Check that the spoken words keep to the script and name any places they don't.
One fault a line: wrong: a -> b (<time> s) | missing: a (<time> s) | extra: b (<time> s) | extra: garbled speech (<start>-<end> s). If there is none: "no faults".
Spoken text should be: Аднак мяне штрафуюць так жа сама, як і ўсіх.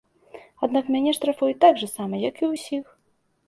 no faults